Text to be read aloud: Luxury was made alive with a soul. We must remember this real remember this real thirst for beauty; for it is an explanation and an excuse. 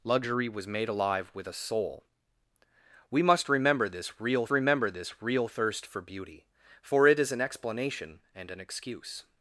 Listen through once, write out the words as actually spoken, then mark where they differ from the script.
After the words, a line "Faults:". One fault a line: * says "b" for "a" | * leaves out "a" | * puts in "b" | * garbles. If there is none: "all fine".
Luxury was made alive with a soul. We must remember this real remember this real thirst for beauty; for it is an explanation and an excuse.
Faults:
all fine